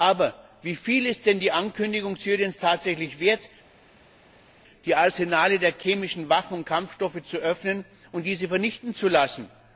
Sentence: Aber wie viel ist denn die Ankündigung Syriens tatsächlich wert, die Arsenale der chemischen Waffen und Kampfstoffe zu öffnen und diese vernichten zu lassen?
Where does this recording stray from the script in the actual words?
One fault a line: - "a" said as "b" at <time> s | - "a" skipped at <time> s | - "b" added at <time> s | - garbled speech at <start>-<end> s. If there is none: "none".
none